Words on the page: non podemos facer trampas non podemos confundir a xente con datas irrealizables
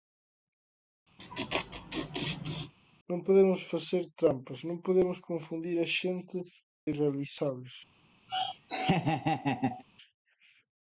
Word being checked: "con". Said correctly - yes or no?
no